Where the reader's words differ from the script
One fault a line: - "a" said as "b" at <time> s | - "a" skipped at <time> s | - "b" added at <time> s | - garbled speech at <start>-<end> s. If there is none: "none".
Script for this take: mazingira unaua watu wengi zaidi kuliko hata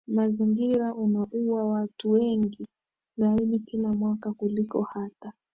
- "kila mwaka" added at 3.6 s